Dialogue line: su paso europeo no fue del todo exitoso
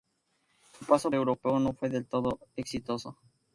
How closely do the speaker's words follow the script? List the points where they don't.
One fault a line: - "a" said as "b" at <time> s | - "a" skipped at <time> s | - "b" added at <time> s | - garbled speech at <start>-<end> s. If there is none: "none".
none